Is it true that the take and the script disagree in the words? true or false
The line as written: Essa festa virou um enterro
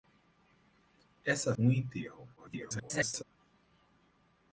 true